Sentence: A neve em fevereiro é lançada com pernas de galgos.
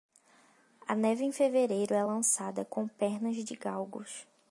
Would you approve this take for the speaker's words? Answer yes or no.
yes